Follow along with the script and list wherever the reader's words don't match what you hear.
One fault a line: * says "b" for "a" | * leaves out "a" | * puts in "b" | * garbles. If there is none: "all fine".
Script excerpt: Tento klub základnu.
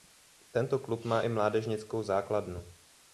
* puts in "má i mládežnickou"